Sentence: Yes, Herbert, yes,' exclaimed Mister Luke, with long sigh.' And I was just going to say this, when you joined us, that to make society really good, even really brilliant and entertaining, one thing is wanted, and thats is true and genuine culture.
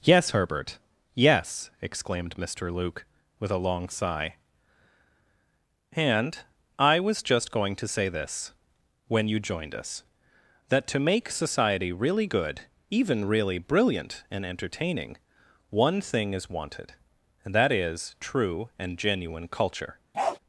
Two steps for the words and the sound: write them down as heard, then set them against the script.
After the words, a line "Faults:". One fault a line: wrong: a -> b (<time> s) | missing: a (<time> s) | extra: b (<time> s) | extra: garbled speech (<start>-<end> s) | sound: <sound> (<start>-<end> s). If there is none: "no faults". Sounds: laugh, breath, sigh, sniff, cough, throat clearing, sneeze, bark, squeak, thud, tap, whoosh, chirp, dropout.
Yes, Herbert, yes,' exclaimed Mister Luke, with a long sigh.' And I was just going to say this, when you joined us, that to make society really good, even really brilliant and entertaining, one thing is wanted, and that is true and genuine culture.
Faults:
extra: a (3.5 s)
wrong: thats -> that (17.5 s)
sound: bark (20.1-20.4 s)